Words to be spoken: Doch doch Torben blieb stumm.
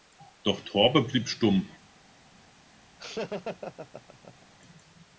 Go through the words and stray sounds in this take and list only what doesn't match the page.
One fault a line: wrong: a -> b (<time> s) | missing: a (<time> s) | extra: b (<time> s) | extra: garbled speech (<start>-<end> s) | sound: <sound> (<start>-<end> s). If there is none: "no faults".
missing: doch (0.6 s)
sound: laugh (3.0-4.5 s)